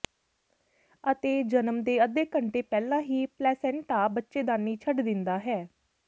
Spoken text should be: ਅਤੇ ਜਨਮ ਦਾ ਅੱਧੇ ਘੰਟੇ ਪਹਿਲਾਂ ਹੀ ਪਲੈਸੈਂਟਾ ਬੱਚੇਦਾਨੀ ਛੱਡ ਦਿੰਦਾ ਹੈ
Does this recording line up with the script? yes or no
no